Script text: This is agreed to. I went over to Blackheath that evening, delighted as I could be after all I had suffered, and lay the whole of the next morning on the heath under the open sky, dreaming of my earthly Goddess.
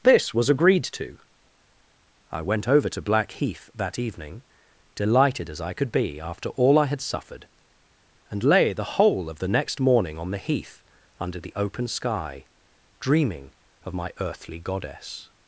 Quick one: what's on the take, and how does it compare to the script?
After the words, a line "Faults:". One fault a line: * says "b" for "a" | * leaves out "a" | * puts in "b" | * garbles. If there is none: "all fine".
This was agreed to. I went over to Blackheath that evening, delighted as I could be after all I had suffered, and lay the whole of the next morning on the heath under the open sky, dreaming of my earthly Goddess.
Faults:
* says "was" for "is"